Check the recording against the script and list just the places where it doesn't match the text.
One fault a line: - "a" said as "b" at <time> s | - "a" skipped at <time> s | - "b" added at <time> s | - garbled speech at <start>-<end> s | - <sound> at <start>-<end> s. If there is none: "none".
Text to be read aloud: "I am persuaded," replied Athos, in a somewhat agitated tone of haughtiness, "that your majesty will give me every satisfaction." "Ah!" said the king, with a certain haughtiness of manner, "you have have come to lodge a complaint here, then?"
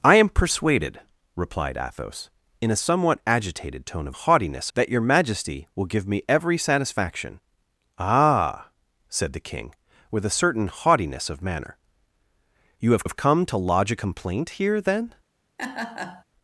- laugh at 15.6-16.2 s